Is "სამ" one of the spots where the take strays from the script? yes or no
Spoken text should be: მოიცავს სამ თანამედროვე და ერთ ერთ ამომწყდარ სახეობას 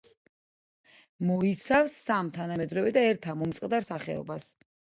no